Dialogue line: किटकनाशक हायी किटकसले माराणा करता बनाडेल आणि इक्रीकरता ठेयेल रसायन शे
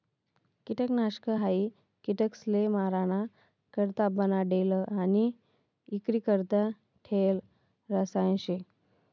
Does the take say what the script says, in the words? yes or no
yes